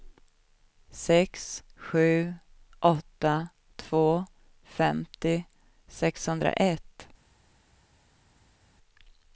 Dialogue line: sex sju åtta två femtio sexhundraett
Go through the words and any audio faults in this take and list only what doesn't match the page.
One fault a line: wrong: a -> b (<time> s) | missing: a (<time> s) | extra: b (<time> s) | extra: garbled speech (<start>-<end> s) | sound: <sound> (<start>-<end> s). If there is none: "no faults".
no faults